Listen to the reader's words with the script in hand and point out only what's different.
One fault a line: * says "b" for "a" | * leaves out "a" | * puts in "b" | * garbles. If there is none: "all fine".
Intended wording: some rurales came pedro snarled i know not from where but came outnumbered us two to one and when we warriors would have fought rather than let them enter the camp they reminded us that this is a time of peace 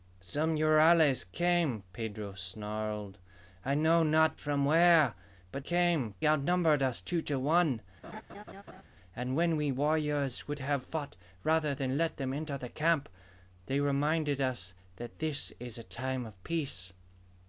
all fine